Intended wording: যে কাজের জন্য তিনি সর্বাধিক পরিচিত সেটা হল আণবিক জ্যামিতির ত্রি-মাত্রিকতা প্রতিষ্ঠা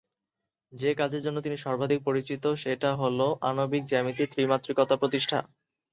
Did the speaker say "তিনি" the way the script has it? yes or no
yes